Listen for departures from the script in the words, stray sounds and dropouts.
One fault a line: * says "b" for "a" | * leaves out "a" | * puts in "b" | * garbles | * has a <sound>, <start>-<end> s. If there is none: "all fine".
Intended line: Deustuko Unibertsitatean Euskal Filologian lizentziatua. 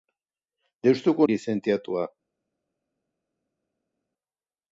* leaves out "Unibertsitatean Euskal Filologian"